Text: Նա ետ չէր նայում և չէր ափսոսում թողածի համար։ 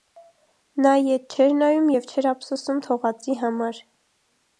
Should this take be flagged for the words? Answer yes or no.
no